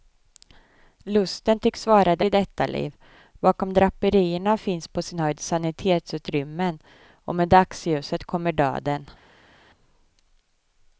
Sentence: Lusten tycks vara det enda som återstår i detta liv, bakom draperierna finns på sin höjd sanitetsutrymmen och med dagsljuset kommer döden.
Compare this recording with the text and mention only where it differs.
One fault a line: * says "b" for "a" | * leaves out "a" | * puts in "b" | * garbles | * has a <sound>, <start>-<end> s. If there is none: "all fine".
* leaves out "enda som återstår"